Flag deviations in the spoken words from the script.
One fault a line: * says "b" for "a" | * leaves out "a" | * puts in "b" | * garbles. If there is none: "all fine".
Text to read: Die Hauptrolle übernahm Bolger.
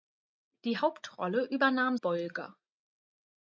all fine